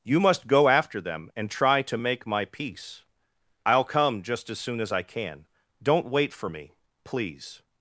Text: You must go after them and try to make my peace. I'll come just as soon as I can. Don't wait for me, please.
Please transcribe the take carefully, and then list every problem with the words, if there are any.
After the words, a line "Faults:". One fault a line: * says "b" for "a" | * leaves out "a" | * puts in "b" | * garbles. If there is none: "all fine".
You must go after them and try to make my peace. I'll come just as soon as I can. Don't wait for me, please.
Faults:
all fine